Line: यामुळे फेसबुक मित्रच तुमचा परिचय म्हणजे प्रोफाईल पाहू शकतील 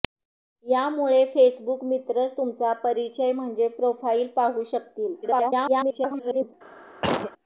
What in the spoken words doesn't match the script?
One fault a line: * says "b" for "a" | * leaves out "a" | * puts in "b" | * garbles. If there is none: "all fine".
* garbles